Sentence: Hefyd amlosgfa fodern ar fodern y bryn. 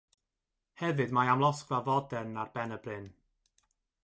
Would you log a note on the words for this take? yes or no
yes